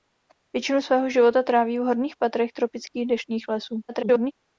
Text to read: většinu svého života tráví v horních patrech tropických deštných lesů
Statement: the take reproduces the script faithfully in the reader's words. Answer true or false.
false